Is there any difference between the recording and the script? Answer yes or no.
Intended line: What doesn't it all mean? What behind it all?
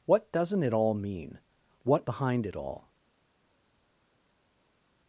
no